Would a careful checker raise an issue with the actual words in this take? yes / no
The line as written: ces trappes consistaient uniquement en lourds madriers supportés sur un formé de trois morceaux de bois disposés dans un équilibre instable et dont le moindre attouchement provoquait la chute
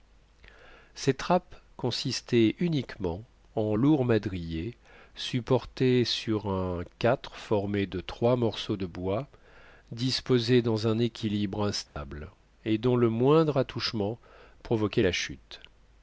no